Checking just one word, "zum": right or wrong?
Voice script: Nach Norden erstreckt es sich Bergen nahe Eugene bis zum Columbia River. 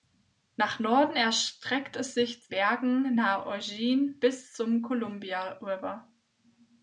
right